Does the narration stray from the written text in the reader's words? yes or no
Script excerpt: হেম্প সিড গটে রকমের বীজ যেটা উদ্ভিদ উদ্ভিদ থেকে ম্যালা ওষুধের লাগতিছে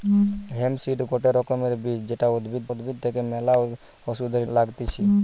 no